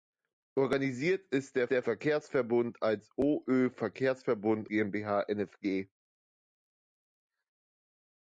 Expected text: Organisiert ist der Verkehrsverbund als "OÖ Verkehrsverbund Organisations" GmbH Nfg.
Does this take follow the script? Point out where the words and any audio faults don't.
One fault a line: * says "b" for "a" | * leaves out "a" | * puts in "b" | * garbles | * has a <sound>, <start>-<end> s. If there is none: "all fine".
* puts in "der"
* leaves out "Organisations"